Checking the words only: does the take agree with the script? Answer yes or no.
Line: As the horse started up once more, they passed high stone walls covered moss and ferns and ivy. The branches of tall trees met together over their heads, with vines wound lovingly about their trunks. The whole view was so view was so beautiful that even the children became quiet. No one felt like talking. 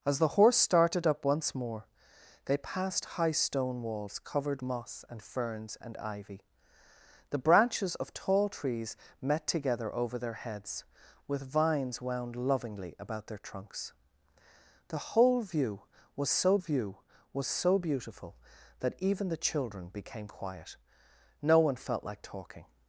yes